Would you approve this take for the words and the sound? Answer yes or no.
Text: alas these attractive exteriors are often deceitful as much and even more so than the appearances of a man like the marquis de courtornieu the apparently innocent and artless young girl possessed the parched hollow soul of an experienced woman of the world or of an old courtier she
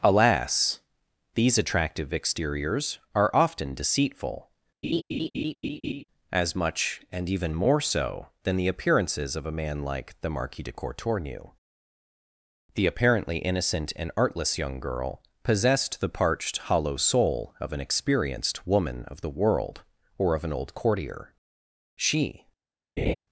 no